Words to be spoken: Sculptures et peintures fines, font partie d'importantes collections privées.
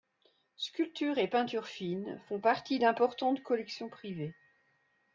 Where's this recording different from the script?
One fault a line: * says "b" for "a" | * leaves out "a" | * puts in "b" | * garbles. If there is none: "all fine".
all fine